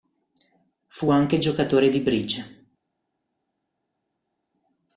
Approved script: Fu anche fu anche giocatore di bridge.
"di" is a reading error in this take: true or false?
false